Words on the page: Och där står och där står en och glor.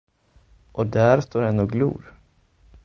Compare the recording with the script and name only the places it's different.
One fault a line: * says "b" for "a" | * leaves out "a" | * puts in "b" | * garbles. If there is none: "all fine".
* leaves out "och där står"